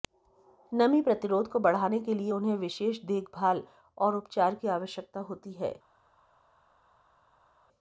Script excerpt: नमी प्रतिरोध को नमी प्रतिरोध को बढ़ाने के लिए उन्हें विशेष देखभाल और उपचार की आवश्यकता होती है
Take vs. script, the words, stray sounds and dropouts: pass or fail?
fail